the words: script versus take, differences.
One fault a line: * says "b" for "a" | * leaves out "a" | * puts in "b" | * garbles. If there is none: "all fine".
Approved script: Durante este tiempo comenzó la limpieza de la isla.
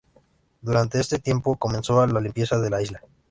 all fine